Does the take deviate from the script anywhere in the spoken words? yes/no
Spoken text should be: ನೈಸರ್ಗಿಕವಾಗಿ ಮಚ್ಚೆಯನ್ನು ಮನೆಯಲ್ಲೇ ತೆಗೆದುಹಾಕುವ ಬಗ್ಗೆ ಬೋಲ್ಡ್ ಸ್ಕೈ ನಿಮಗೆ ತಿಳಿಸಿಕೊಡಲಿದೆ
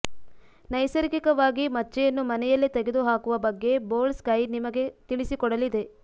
no